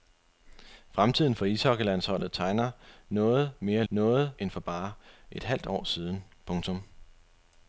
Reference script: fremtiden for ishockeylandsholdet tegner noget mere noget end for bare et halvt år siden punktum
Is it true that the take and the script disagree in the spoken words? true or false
false